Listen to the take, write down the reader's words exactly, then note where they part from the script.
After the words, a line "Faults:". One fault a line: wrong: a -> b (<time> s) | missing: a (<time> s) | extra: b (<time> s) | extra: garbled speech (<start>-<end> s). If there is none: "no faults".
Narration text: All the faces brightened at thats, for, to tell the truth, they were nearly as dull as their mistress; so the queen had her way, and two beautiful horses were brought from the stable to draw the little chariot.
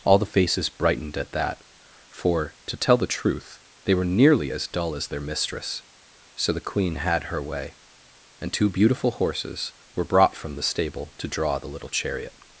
All the faces brightened at that, for, to tell the truth, they were nearly as dull as their mistress; so the queen had her way, and two beautiful horses were brought from the stable to draw the little chariot.
Faults:
wrong: thats -> that (1.3 s)